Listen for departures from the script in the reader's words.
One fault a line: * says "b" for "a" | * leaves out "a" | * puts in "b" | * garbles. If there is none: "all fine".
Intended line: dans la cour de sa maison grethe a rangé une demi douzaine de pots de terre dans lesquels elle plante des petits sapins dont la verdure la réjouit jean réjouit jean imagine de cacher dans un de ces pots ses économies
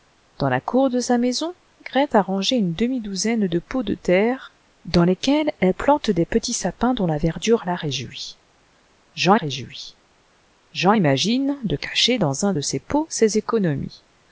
all fine